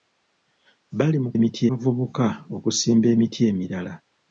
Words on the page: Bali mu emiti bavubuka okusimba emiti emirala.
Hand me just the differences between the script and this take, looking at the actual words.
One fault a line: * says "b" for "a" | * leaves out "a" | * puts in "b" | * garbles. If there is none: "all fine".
all fine